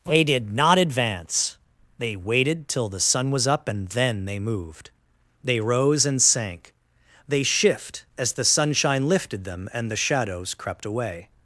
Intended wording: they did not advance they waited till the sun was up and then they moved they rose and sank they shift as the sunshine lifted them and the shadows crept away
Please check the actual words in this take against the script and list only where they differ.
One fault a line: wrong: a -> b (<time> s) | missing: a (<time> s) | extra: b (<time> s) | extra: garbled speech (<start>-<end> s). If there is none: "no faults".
no faults